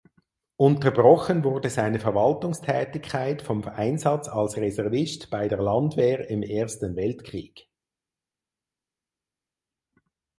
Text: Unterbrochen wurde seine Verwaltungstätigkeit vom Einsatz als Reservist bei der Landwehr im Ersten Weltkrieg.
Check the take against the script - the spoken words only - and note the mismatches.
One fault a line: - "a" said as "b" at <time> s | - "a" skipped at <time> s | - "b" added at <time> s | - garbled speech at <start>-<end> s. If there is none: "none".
none